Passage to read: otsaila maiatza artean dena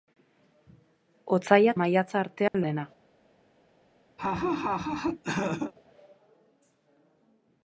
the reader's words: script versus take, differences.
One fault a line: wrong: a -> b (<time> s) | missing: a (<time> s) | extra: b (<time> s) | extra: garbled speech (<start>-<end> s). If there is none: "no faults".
no faults